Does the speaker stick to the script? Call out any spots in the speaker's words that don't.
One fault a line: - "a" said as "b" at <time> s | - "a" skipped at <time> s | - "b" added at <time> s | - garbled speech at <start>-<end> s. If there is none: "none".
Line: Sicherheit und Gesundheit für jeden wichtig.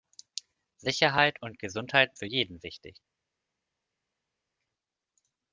none